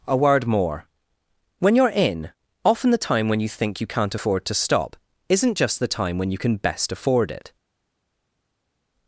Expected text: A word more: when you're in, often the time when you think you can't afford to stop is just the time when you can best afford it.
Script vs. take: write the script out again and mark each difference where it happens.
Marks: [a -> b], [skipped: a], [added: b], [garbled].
A word more: when you're in, often the time when you think you can't afford to stop [is -> isn't] just the time when you can best afford it.